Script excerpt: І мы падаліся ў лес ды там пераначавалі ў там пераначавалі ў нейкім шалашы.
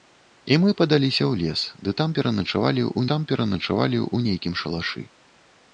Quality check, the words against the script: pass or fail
pass